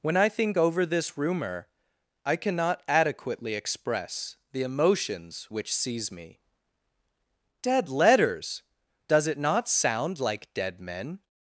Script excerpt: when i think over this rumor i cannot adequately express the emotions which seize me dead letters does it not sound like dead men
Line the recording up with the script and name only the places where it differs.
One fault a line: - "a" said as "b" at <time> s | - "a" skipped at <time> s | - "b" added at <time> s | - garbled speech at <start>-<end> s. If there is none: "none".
none